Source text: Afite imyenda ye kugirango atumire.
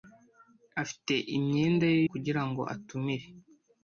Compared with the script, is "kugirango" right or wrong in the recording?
right